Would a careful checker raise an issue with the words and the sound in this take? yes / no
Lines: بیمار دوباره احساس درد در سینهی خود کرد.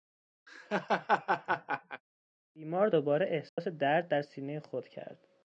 yes